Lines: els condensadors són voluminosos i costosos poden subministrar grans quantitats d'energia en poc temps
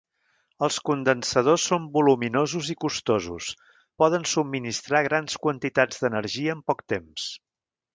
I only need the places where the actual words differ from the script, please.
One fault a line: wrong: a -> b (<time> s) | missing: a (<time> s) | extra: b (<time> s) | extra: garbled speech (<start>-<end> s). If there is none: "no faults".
no faults